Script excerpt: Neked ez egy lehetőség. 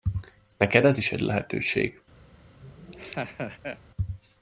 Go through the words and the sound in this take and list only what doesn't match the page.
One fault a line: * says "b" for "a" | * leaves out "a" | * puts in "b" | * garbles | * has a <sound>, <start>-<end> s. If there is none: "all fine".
* puts in "is"
* has a laugh, 2.6-3.8 s